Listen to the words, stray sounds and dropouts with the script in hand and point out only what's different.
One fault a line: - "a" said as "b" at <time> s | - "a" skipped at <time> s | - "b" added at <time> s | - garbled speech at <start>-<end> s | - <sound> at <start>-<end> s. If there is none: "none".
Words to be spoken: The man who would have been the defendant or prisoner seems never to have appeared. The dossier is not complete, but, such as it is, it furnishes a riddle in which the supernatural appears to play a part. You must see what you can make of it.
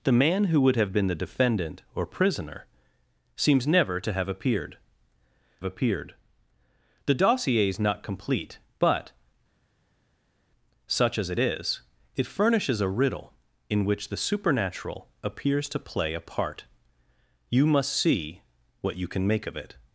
- "appeared" added at 5.6 s